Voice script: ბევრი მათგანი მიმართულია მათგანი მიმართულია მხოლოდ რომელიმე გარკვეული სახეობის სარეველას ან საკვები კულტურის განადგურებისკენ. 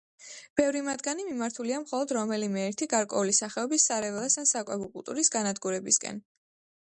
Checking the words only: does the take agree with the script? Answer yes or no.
no